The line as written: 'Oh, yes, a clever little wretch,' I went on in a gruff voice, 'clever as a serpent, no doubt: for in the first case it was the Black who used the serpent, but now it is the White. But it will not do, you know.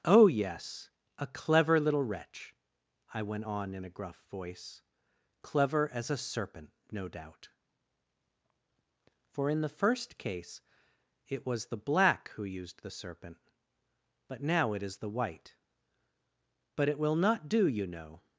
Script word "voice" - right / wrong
right